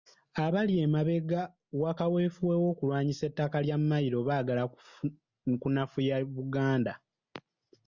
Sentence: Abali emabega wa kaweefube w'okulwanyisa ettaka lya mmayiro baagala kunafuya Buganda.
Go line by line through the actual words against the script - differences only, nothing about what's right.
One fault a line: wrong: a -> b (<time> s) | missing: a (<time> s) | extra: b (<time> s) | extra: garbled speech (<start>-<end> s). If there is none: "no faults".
no faults